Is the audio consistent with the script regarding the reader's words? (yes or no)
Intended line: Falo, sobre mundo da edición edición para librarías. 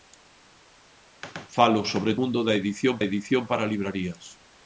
yes